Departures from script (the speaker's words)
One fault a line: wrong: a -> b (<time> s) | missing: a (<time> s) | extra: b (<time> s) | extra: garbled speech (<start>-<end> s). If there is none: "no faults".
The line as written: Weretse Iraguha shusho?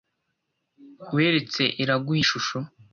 no faults